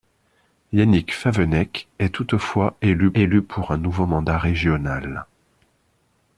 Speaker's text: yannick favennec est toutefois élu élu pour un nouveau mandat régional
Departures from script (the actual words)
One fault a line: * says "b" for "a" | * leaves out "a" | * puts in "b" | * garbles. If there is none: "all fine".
all fine